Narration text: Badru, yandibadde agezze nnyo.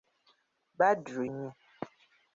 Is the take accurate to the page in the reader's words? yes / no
no